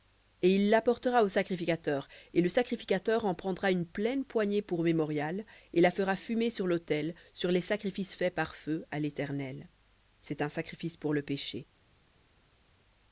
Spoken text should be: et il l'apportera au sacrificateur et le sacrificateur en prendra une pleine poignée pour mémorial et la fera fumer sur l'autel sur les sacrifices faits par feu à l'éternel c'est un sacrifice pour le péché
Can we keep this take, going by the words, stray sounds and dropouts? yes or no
yes